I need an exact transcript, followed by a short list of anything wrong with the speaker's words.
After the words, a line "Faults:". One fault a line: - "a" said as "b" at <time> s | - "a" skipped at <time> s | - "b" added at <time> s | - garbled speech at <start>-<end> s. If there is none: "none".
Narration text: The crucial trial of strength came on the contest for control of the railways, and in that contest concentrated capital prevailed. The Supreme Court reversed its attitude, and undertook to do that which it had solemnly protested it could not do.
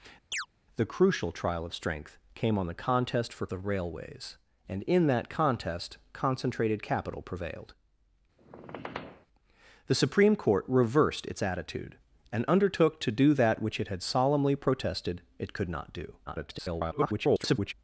The crucial trial of strength came on the contest for the railways, and in that contest concentrated capital prevailed. The Supreme Court reversed its attitude, and undertook to do that which it had solemnly protested it could not do. [garbled]
Faults:
- "control of" skipped at 3.5 s
- garbled speech at 16.3-17.7 s